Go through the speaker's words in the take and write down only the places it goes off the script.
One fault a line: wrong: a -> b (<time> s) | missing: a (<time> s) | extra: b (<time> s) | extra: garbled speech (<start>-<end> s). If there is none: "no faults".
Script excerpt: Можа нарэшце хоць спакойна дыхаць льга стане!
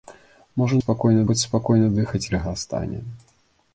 wrong: нарэшце -> спакойна (0.8 s)